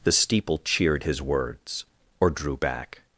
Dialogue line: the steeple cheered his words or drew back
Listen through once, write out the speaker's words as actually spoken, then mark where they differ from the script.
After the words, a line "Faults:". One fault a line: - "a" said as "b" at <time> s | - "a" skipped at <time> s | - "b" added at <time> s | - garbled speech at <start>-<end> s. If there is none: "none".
the steeple cheered his words or drew back
Faults:
none